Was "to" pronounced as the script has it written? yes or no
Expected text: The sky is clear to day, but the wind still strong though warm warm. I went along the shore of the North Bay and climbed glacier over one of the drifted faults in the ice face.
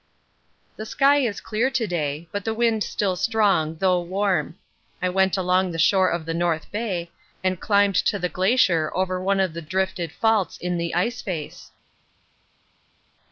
yes